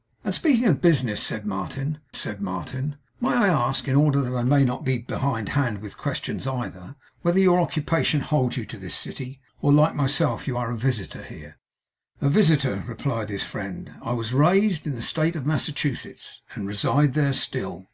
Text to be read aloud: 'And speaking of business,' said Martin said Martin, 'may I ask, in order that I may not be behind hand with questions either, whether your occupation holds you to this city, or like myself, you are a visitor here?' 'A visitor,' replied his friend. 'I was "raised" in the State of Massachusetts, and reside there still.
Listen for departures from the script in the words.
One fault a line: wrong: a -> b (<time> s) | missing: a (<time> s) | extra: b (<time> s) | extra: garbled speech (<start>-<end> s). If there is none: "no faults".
no faults